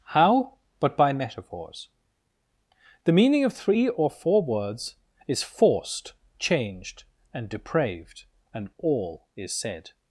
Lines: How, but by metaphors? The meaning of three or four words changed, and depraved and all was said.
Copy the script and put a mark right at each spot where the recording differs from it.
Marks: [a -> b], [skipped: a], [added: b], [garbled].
How, but by metaphors? The meaning of three or four words [added: is forced] changed, and depraved and all [was -> is] said.